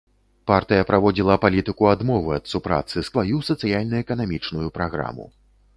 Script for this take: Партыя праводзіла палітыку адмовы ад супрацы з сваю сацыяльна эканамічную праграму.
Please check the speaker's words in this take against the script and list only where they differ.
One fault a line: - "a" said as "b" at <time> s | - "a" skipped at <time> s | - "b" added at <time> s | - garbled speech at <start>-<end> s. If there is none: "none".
none